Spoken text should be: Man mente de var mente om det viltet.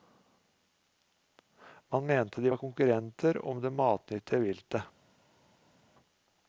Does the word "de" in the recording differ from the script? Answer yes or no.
no